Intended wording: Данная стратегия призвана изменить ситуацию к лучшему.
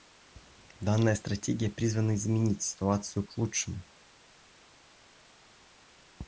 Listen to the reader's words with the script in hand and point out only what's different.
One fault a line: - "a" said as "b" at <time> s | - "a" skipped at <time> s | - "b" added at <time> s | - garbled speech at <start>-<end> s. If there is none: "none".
none